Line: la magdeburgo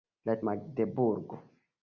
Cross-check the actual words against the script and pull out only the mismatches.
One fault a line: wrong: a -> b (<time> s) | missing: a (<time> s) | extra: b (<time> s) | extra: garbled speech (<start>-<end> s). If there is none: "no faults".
no faults